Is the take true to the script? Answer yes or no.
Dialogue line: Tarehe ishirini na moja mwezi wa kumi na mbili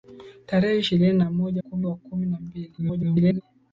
no